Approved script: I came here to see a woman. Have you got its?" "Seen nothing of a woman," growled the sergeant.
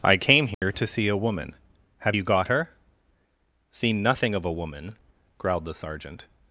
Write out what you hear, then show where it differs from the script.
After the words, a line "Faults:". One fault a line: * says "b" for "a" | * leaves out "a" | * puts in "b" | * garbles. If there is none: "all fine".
I came here to see a woman. Have you got her?" "Seen nothing of a woman," growled the sergeant.
Faults:
* says "her" for "its"